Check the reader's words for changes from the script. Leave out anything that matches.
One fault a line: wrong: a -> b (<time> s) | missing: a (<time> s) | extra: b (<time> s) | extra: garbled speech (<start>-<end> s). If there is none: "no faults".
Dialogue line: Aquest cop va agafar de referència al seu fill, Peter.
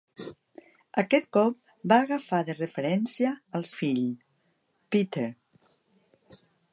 missing: seu (3.7 s)